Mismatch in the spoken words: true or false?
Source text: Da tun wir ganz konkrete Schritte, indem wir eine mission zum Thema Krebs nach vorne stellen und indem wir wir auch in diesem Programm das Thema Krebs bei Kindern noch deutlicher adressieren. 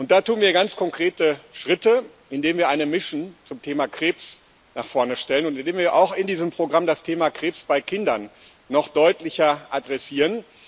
true